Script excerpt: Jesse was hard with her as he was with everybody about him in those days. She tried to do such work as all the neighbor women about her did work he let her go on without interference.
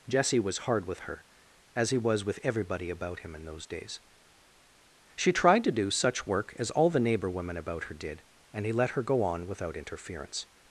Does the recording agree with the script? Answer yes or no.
no